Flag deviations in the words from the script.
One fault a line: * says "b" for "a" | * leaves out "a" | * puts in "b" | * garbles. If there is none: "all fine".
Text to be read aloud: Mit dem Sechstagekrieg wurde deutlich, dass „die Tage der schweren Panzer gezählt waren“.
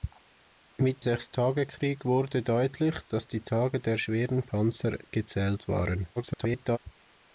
* leaves out "dem"
* garbles